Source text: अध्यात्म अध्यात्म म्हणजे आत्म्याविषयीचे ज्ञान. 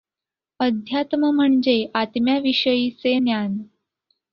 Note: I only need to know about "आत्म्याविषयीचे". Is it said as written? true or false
true